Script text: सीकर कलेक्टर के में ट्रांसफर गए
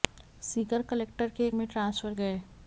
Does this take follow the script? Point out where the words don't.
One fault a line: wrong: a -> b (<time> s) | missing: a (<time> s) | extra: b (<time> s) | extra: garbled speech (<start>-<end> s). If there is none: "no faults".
no faults